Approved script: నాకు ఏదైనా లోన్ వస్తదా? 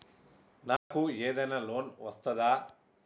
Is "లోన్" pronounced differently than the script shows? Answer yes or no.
no